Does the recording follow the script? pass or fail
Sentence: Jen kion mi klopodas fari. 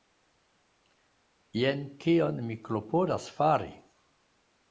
pass